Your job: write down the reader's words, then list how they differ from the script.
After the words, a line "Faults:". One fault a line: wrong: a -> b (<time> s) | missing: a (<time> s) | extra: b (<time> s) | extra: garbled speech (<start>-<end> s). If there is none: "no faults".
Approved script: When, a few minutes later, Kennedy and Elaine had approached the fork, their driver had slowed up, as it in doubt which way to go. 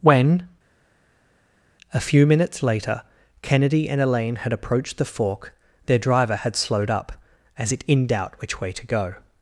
When, a few minutes later, Kennedy and Elaine had approached the fork, their driver had slowed up, as it in doubt which way to go.
Faults:
no faults